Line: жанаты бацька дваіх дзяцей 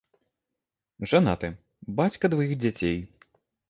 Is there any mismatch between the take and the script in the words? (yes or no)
no